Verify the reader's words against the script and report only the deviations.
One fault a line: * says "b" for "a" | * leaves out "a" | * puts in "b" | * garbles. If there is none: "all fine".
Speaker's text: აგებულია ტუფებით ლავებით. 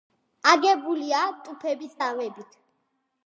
all fine